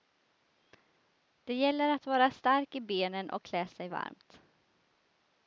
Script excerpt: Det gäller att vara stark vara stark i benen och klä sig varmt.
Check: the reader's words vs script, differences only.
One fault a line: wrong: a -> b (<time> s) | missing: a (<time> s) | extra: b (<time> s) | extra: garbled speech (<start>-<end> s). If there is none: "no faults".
missing: vara stark (2.8 s)